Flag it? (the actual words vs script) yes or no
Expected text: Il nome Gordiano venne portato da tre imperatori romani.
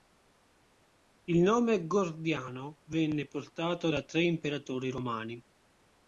no